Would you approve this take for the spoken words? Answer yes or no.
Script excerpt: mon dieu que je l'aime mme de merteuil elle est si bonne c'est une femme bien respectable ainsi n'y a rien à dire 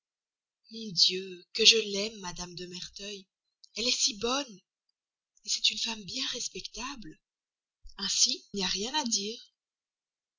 yes